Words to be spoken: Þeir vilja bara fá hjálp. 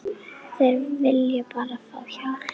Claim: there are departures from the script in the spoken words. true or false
false